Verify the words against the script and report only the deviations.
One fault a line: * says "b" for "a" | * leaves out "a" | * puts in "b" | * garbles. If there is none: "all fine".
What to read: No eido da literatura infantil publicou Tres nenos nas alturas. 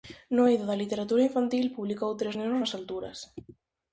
all fine